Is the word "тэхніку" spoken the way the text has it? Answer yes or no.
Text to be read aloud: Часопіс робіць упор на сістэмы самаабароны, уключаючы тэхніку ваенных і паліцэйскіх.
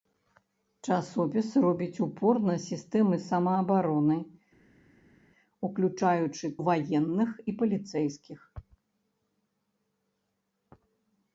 no